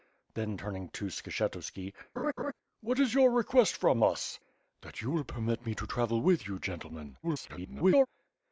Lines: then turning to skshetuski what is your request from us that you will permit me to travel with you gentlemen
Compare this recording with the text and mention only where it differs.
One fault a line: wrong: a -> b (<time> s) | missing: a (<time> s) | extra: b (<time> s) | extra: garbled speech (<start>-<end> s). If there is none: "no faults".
extra: garbled speech (7.2-8.1 s)